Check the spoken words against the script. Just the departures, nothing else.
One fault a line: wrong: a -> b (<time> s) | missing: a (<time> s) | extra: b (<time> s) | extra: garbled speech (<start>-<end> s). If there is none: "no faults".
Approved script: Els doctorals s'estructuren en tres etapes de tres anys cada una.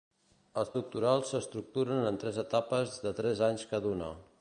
no faults